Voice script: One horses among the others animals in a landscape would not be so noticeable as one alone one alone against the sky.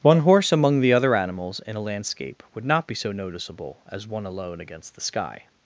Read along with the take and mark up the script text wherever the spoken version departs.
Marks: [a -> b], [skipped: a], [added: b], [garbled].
One [horses -> horse] among the [others -> other] animals in a landscape would not be so noticeable as one alone [skipped: one alone] against the sky.